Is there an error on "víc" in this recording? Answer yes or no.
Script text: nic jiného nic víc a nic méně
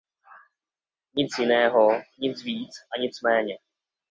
no